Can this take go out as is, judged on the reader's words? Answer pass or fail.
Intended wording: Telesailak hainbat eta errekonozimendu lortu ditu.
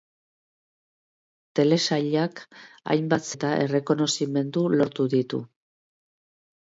pass